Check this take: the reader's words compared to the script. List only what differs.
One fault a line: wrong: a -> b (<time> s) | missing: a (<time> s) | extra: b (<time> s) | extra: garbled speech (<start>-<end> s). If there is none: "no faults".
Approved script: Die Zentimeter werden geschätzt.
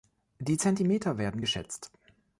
no faults